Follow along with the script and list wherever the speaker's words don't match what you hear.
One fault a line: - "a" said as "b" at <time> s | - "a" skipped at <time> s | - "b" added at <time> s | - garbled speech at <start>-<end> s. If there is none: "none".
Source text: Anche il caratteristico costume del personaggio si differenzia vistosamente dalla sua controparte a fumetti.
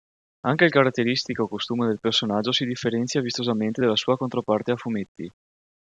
none